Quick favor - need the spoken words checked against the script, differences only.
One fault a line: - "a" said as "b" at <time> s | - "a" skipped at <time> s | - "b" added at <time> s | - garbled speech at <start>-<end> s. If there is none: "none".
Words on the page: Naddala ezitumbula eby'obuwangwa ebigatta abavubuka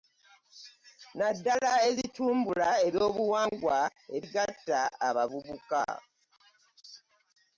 none